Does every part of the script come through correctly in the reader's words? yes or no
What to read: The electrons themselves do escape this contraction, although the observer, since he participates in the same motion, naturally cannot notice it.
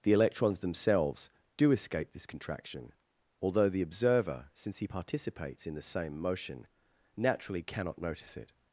yes